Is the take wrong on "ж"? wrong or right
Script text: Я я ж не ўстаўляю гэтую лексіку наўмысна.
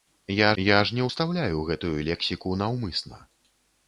right